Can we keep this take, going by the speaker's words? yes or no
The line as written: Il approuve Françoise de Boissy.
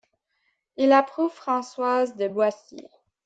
yes